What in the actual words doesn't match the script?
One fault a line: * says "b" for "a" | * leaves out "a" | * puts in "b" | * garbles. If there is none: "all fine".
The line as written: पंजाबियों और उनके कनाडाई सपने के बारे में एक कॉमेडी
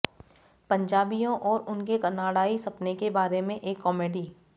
all fine